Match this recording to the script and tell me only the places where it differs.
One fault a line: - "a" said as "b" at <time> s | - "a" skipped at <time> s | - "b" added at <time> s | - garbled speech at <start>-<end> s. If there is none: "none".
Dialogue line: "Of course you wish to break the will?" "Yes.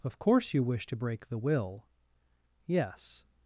none